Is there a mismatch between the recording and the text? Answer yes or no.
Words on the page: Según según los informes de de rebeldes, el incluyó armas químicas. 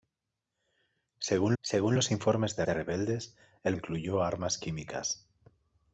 no